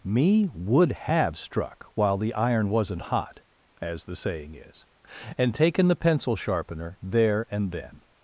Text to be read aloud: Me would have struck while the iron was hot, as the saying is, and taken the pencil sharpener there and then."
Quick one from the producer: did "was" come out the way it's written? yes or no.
no